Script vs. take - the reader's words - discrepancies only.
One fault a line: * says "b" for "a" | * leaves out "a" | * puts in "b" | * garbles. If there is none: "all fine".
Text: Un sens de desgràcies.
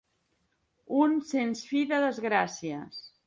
* puts in "fi"